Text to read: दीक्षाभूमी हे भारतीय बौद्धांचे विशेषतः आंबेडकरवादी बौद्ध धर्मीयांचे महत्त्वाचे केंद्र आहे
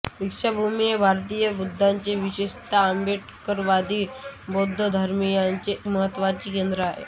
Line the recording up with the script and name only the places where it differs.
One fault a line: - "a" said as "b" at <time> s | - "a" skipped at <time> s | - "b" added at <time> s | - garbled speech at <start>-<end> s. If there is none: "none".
none